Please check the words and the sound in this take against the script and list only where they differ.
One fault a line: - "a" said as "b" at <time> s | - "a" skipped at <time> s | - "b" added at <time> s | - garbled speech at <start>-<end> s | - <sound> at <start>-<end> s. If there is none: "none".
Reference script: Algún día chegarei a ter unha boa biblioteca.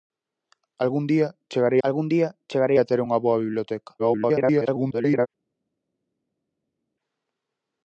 - "algún día chegarei" added at 1.9 s
- garbled speech at 4.0-5.3 s